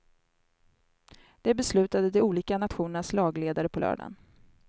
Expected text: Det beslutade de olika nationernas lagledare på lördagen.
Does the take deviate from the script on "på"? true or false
false